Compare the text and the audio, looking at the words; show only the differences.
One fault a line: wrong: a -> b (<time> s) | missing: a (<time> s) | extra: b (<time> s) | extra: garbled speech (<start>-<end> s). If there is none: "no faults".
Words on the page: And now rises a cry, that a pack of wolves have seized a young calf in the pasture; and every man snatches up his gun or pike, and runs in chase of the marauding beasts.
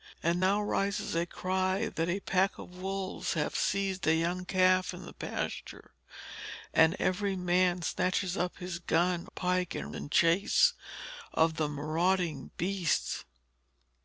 missing: or (9.3 s)
missing: runs (10.0 s)